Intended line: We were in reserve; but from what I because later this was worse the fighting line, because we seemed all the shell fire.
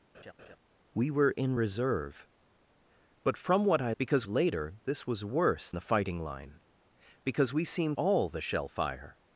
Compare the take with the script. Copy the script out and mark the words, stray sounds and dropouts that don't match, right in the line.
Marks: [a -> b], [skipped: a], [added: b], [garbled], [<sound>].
[laugh] We were in reserve; but from what I because later this was worse the fighting line, because we seemed all the shell fire.